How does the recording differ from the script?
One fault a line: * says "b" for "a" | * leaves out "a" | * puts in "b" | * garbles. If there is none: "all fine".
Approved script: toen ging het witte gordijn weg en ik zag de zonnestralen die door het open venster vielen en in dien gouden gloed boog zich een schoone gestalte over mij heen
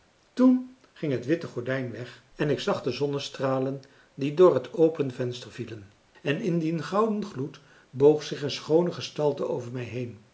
all fine